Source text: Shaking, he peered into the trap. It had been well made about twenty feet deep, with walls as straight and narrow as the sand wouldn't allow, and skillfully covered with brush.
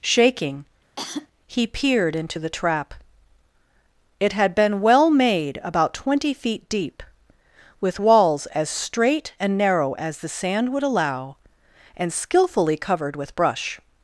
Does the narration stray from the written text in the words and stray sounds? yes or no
yes